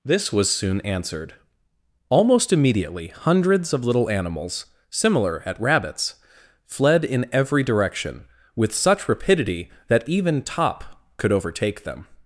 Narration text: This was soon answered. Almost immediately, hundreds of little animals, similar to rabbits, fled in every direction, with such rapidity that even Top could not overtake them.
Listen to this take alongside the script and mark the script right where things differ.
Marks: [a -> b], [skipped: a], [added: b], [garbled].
This was soon answered. Almost immediately, hundreds of little animals, similar [to -> at] rabbits, fled in every direction, with such rapidity that even Top could [skipped: not] overtake them.